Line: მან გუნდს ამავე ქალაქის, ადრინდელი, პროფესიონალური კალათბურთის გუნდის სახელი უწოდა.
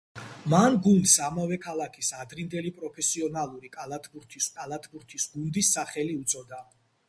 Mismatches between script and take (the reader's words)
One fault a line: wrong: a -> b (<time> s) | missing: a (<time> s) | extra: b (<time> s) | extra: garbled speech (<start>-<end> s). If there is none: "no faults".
extra: კალათბურთის (4.6 s)